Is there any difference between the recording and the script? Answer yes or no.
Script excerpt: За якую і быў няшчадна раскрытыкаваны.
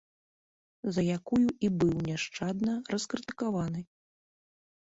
no